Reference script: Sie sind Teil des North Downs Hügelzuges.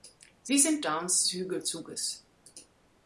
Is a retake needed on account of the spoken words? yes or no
yes